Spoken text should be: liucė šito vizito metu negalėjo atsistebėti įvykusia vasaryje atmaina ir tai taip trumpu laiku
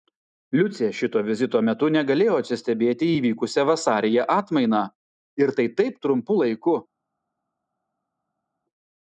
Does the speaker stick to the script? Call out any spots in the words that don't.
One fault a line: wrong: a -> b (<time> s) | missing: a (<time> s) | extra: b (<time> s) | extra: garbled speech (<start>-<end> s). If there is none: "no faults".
no faults